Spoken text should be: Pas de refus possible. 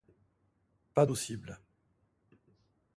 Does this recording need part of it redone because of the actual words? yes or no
yes